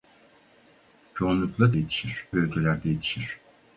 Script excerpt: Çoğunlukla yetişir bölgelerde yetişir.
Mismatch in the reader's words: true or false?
false